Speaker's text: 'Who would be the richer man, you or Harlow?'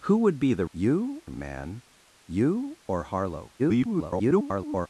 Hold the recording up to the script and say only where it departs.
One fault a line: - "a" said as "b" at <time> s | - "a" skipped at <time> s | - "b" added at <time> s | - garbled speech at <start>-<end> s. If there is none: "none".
- "richer" said as "you" at 0.7 s
- garbled speech at 3.6-4.9 s